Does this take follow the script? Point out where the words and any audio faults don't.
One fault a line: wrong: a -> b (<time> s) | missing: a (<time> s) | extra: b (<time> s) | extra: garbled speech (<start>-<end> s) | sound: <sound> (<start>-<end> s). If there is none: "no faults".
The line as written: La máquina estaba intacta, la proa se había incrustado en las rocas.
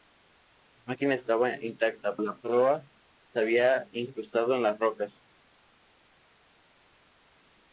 no faults